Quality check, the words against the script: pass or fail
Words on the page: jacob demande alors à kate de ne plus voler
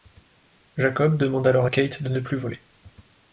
pass